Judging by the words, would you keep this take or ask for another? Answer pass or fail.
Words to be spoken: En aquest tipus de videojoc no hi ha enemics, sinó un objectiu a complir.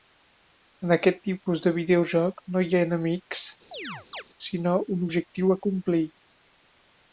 pass